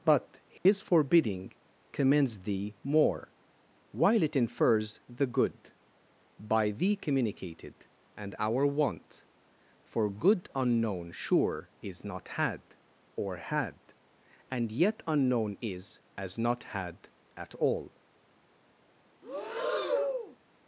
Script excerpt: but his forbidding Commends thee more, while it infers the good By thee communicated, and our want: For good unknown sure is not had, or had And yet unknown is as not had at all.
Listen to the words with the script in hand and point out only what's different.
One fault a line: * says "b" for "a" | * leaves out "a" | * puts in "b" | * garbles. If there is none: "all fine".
all fine